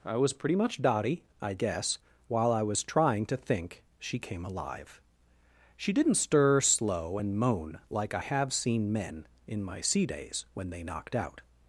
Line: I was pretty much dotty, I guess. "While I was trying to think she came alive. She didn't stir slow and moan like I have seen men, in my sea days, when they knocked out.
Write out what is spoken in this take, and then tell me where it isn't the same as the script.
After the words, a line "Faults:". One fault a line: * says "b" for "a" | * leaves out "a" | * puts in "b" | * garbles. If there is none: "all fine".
I was pretty much dotty, I guess. "While I was trying to think she came alive. She didn't stir slow and moan like I have seen men, in my sea days, when they knocked out.
Faults:
all fine